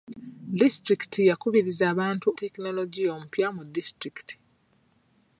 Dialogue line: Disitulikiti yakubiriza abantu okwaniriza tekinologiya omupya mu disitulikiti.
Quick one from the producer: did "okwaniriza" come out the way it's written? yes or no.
no